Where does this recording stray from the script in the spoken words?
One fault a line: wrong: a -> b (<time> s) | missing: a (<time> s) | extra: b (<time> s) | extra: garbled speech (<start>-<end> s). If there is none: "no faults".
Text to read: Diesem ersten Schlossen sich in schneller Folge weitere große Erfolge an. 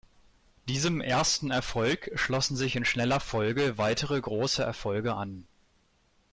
extra: Erfolg (1.5 s)